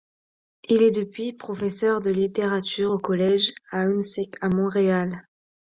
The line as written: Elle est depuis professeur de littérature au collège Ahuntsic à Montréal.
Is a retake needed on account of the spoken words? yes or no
yes